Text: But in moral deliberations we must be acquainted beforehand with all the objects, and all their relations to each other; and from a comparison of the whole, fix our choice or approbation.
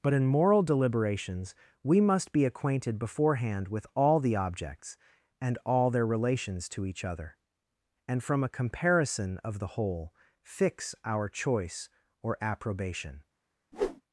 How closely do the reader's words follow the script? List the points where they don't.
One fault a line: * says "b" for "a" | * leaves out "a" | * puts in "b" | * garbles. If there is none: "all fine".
all fine